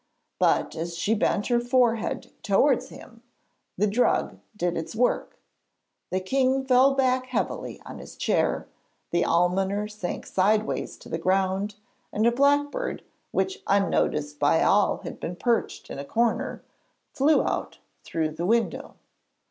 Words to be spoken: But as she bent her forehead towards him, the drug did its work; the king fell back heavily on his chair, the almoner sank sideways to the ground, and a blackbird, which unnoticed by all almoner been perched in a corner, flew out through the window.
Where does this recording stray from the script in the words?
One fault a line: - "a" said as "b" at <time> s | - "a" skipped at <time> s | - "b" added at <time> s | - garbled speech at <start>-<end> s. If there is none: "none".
- "almoner" said as "had" at 15.0 s